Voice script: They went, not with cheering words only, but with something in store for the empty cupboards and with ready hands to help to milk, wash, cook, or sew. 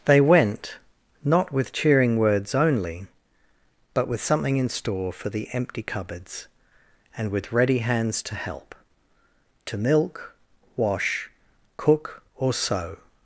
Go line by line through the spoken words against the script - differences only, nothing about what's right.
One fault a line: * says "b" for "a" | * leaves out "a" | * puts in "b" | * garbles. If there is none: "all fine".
all fine